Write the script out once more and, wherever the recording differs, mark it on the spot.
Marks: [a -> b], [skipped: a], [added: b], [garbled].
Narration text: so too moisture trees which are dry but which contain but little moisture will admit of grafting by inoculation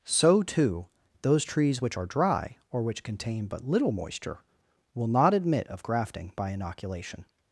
so too [moisture -> those] trees which are dry [but -> or] which contain but little moisture will [added: not] admit of grafting by inoculation